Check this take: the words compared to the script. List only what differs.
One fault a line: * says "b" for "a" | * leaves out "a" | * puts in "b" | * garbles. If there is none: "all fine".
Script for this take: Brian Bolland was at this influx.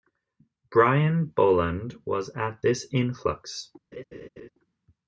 all fine